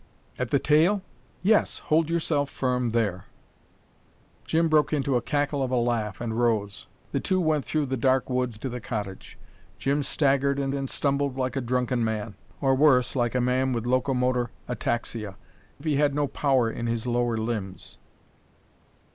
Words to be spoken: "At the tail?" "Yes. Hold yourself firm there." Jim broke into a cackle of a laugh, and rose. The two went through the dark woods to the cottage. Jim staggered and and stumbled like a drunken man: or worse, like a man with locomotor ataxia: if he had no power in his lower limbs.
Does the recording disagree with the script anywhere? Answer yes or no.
no